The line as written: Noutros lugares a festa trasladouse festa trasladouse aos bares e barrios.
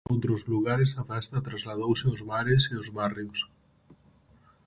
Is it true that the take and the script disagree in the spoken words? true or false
true